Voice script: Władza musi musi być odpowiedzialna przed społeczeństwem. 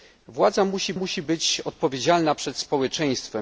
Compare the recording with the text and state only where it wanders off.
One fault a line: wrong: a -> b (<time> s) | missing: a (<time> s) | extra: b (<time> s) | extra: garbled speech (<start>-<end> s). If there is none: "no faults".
no faults